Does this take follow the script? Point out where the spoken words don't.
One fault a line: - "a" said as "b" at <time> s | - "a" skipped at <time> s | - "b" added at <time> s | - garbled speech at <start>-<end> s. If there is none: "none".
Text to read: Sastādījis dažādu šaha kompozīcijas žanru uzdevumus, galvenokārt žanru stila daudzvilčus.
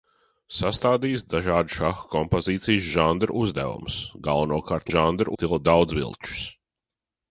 none